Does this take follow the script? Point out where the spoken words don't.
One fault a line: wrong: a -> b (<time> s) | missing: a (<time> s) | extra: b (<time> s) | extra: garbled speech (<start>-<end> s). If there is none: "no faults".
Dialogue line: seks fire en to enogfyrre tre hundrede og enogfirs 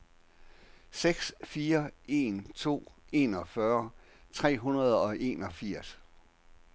no faults